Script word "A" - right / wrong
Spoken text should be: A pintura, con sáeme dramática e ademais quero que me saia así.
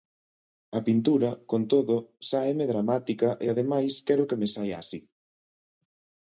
right